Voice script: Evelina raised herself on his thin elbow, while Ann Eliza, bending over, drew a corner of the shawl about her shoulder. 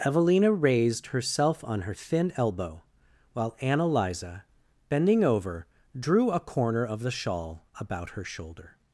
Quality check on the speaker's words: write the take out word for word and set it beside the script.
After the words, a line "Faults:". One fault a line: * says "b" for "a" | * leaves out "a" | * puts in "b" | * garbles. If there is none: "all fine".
Evelina raised herself on her thin elbow, while Ann Eliza, bending over, drew a corner of the shawl about her shoulder.
Faults:
* says "her" for "his"